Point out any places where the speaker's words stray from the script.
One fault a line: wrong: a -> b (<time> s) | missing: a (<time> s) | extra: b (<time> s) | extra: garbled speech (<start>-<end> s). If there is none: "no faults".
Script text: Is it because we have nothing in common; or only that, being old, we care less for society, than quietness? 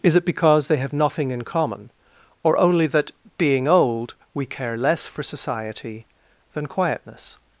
wrong: we -> they (0.7 s)